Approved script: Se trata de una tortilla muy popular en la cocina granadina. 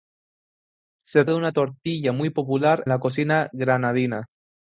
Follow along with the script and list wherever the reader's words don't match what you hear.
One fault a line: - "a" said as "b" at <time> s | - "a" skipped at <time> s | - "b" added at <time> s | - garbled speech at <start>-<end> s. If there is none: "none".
- "trata" skipped at 1.2 s
- "en" skipped at 2.8 s